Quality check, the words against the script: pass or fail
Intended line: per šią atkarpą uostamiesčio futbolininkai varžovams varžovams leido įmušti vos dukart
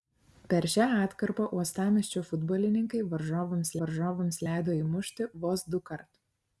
pass